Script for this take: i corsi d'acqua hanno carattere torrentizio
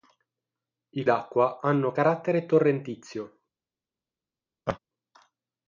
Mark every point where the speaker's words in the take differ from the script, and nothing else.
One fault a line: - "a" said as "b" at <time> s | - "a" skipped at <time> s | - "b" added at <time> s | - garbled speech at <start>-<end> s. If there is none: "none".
- "corsi" skipped at 1.1 s